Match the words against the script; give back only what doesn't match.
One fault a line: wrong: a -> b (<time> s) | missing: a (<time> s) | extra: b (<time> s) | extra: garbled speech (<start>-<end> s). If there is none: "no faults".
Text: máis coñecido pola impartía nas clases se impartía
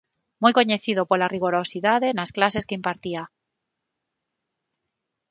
wrong: máis -> moi (0.4 s)
wrong: impartía -> rigorosidade (1.3 s)
wrong: se -> que (2.7 s)